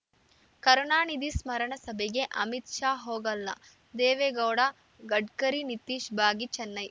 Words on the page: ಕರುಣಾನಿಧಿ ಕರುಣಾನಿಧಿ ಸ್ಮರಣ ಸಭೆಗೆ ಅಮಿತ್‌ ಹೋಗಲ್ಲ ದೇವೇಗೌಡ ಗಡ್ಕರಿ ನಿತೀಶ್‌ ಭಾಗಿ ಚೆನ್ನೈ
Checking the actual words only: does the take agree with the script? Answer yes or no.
no